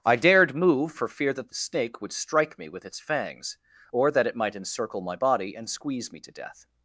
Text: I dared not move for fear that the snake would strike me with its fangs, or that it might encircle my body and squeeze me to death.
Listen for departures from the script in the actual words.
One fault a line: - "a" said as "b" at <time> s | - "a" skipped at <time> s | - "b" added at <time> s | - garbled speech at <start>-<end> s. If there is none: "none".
- "not" skipped at 0.6 s